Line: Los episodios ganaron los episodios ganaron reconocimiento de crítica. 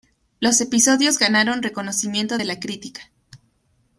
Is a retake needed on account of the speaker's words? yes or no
yes